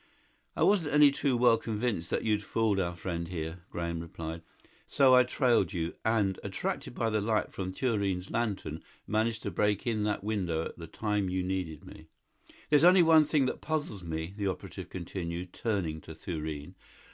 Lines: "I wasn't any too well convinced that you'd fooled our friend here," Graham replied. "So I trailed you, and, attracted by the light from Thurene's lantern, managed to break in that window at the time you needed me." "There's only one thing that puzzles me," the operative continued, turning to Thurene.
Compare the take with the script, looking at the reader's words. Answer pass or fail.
pass